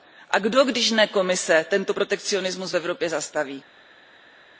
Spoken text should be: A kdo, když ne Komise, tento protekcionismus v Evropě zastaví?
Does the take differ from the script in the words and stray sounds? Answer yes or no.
no